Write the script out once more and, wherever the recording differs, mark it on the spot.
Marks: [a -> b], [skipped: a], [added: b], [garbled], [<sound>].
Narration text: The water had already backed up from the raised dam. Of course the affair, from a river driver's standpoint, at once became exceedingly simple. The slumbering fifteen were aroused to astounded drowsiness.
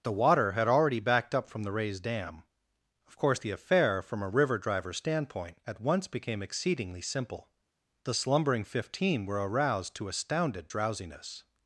The water had already backed up from the raised dam. Of course the affair, from a river driver's standpoint, at once became exceedingly simple. The slumbering fifteen were aroused to astounded drowsiness.